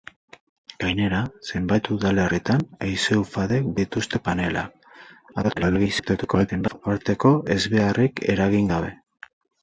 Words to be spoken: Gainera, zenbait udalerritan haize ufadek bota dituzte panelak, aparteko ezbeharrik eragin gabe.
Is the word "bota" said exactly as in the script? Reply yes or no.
no